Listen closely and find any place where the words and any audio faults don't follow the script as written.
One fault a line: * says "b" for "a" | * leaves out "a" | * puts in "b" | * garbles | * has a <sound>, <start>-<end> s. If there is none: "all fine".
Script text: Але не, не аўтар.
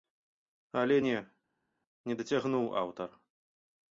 * puts in "дацягнуў"